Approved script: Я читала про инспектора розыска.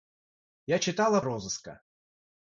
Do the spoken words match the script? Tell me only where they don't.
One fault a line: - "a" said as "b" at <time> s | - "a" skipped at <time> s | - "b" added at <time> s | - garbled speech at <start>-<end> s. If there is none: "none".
- "про инспектора" skipped at 1.2 s